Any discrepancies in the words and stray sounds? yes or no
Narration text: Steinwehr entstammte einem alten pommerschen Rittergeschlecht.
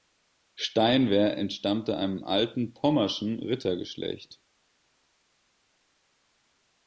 no